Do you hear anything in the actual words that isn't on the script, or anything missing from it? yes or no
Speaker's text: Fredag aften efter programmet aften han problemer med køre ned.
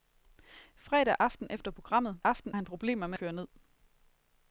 no